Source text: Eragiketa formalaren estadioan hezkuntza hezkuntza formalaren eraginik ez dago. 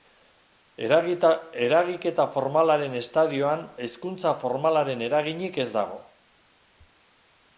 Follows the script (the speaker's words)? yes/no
no